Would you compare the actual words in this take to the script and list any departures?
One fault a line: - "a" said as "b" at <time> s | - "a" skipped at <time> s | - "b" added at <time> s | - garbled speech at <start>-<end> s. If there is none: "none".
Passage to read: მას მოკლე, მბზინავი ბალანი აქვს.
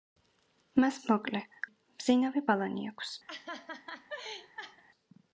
none